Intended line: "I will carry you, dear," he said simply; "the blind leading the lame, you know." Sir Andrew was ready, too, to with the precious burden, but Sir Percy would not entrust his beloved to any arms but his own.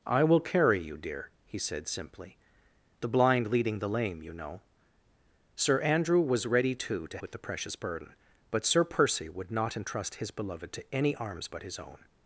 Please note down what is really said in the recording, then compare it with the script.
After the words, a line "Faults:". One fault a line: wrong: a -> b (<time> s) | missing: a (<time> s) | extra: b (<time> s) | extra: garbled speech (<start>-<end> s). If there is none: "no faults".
"I will carry you, dear," he said simply; "the blind leading the lame, you know." Sir Andrew was ready, too, to with the precious burden, but Sir Percy would not entrust his beloved to any arms but his own.
Faults:
no faults